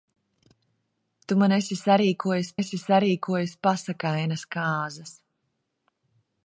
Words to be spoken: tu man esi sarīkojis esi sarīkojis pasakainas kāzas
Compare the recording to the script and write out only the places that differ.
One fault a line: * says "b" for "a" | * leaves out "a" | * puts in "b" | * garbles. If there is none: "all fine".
all fine